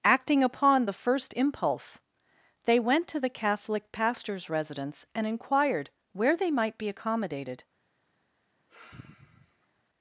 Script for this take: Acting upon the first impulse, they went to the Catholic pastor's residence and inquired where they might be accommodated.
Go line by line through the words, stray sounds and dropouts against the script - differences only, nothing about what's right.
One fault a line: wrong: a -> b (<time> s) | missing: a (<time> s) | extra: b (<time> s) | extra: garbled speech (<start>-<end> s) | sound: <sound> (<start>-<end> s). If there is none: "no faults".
sound: sigh (8.7-9.8 s)